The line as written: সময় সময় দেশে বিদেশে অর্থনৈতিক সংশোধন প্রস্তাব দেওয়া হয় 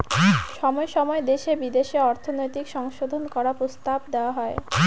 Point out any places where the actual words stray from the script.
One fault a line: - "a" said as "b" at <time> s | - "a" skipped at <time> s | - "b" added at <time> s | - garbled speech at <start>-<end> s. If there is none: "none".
- "করার" added at 3.3 s